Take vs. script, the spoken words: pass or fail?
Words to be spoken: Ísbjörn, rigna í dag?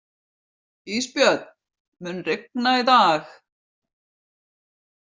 fail